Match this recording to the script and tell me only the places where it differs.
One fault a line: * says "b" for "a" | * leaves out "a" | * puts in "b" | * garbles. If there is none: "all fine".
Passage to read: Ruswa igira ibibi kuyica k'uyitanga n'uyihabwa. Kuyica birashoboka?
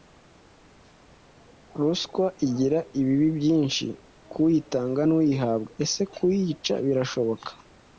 * says "byinshi" for "kuyica"
* puts in "Ese"